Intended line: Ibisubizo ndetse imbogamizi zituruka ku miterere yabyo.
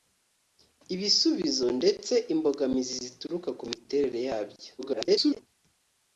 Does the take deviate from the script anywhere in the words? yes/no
yes